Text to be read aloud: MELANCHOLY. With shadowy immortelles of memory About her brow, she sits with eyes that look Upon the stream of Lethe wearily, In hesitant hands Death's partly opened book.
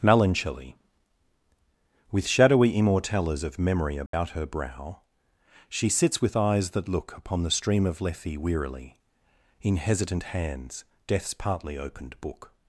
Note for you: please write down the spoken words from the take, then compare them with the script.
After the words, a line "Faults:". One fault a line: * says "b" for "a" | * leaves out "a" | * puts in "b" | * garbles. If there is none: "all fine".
MELANCHOLY. With shadowy immortelles of memory About her brow, she sits with eyes that look Upon the stream of Lethe wearily, In hesitant hands Death's partly opened book.
Faults:
all fine